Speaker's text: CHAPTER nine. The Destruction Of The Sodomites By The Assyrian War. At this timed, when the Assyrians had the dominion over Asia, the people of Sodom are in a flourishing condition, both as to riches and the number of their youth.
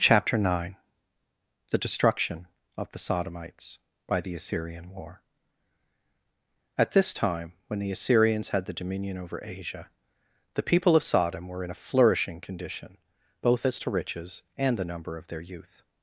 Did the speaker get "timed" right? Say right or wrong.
wrong